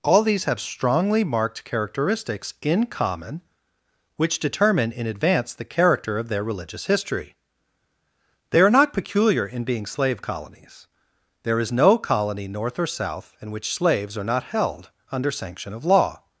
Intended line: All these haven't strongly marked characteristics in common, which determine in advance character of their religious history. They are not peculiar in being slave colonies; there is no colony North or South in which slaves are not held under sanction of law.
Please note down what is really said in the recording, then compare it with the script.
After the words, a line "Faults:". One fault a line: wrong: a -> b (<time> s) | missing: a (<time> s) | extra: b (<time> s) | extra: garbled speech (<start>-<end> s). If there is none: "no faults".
All these have strongly marked characteristics in common, which determine in advance the character of their religious history. They are not peculiar in being slave colonies; there is no colony North or South in which slaves are not held under sanction of law.
Faults:
wrong: haven't -> have (0.5 s)
extra: the (5.5 s)